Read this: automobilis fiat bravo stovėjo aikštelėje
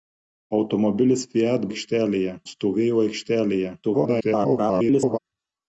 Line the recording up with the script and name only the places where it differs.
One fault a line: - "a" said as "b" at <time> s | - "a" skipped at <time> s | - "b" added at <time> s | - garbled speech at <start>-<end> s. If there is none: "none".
- "bravo" said as "aikštelėje" at 1.7 s
- garbled speech at 3.8-5.2 s